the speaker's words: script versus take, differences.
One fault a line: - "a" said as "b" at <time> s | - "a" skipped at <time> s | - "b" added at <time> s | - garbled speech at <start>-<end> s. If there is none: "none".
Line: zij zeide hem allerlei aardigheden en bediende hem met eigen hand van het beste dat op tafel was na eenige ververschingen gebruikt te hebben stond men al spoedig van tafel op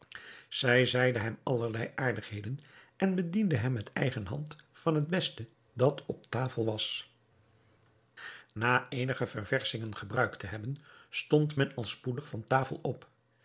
none